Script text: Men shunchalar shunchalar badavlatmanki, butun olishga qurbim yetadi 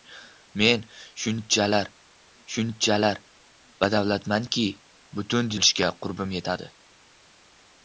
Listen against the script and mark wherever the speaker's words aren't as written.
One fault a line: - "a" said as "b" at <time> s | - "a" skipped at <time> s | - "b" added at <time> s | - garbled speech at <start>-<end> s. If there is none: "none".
none